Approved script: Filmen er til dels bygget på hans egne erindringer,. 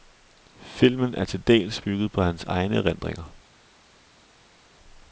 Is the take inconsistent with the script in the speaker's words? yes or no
no